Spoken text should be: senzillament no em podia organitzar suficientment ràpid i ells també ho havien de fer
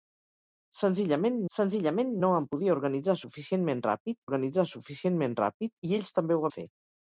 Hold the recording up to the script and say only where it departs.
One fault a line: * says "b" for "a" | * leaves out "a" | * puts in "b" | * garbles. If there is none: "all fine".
* puts in "senzillament"
* puts in "organitzar suficientment ràpid"
* leaves out "havien"